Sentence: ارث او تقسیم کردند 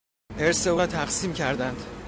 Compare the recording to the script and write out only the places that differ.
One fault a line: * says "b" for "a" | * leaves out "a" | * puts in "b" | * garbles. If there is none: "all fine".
* puts in "را"